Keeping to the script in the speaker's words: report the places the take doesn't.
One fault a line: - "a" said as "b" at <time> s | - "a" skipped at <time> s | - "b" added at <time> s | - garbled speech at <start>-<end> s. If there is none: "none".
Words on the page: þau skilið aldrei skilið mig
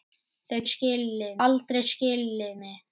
none